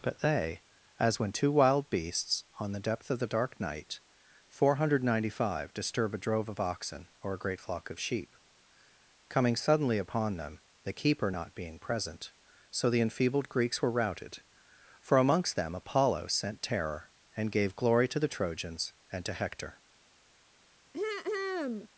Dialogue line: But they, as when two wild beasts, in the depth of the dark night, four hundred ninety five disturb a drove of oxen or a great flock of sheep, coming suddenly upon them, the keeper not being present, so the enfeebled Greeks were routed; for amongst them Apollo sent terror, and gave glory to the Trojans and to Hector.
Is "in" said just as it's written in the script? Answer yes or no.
no